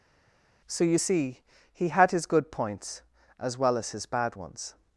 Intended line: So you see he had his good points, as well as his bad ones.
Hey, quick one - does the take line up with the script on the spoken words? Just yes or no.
yes